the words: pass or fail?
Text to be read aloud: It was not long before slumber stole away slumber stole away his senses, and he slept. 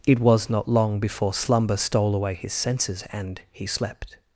fail